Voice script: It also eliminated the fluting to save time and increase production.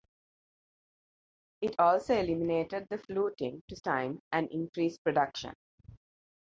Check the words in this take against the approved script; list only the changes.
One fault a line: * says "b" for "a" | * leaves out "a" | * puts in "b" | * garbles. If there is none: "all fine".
* leaves out "save"